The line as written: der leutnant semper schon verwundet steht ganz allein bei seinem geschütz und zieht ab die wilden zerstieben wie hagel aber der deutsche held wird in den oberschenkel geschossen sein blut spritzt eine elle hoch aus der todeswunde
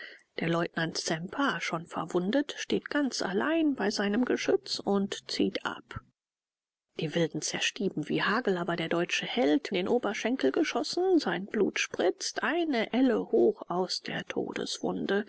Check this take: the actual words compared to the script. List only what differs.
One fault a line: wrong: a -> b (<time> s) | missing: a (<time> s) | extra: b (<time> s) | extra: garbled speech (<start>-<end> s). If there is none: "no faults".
missing: wird in (9.8 s)